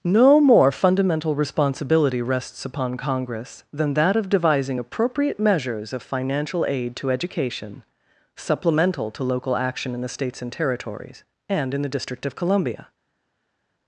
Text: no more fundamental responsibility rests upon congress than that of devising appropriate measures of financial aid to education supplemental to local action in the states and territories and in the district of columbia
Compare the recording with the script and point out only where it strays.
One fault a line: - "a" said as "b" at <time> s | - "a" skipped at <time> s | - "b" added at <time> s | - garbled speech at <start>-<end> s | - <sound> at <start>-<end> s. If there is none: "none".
none